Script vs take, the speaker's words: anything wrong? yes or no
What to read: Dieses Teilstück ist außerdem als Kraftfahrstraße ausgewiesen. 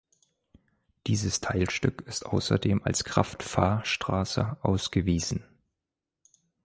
no